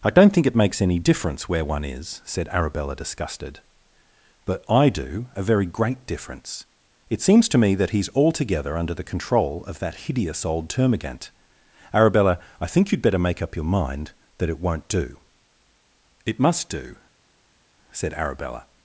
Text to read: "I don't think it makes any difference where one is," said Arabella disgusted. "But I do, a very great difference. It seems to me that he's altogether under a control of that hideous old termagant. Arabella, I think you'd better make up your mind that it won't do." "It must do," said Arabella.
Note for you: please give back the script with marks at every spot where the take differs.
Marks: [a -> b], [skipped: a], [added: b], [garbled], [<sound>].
"I don't think it makes any difference where one is," said Arabella disgusted. "But I do, a very great difference. It seems to me that he's altogether under [a -> the] control of that hideous old termagant. Arabella, I think you'd better make up your mind that it won't do." "It must do," said Arabella.